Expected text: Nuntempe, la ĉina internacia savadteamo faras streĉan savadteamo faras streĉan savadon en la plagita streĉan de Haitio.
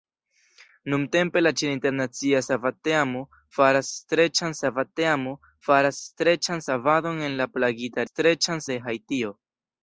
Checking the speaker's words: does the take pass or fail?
pass